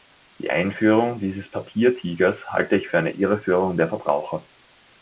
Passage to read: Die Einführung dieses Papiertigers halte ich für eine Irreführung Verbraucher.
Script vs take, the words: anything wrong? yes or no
yes